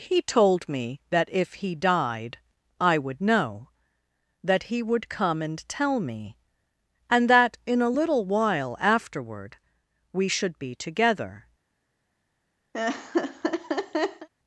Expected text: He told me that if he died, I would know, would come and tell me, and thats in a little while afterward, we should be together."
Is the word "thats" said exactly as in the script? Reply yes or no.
no